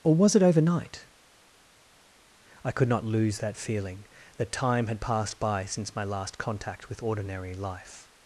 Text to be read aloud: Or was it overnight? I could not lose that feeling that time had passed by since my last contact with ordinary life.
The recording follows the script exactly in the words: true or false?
true